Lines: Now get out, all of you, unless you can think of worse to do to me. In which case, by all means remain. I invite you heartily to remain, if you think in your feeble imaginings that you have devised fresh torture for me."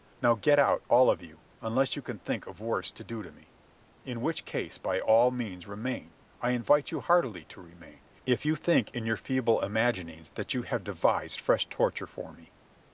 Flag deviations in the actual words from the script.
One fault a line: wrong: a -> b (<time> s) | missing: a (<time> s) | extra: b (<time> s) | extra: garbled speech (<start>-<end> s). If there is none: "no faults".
no faults